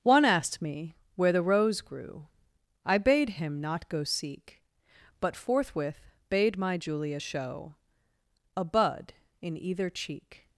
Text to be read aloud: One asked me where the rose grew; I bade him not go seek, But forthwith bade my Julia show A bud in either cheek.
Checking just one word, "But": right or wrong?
right